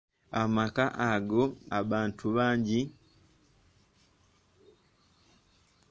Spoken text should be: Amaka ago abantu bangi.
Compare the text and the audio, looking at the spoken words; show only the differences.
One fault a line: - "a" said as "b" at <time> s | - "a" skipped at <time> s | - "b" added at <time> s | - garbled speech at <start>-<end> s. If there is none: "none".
none